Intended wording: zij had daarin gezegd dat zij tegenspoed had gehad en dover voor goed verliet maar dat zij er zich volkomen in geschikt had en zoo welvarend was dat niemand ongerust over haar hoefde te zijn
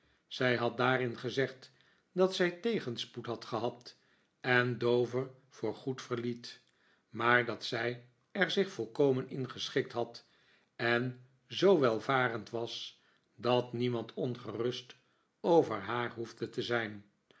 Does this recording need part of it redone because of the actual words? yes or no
no